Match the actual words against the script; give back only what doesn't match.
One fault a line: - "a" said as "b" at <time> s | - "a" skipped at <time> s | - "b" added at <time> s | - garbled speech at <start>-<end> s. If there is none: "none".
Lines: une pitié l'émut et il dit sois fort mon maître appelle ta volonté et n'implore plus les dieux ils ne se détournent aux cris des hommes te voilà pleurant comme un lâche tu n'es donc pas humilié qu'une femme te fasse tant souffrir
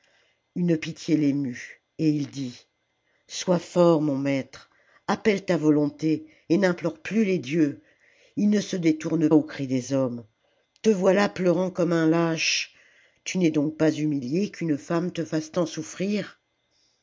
none